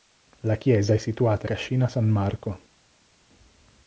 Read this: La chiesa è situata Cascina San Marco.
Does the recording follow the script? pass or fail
pass